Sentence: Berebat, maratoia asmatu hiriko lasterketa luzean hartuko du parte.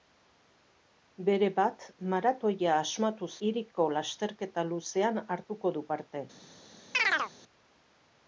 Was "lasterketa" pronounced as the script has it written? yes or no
yes